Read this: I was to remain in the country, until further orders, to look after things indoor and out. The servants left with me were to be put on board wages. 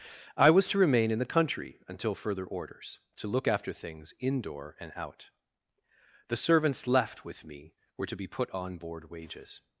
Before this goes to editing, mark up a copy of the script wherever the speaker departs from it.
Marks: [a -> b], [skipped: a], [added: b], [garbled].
I was to remain in the country, until further orders, to look after things indoor and out. The servants left with me were to be put on board wages.